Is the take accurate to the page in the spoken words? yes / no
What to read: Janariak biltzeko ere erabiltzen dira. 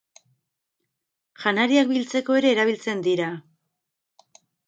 yes